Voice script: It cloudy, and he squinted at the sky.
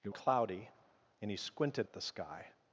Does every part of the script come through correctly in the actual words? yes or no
yes